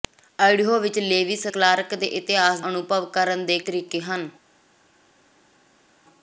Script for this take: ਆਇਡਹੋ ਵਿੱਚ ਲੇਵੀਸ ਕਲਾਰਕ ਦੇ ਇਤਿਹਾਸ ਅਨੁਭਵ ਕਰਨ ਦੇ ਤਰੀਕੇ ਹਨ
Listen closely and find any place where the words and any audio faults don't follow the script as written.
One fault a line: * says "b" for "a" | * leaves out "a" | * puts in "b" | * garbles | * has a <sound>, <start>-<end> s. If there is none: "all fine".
all fine